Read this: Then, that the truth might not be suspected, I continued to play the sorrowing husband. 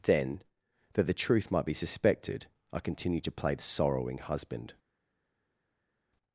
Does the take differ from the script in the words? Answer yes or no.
yes